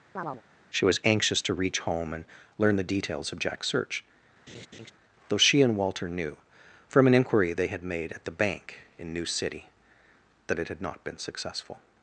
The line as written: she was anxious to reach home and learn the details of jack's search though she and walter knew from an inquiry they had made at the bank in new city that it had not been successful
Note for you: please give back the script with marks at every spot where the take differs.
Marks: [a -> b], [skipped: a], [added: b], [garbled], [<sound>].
[chirp] she was anxious to reach home and learn the details of jack's search [laugh] though she and walter knew from an inquiry they had made at the bank in new city that it had not been successful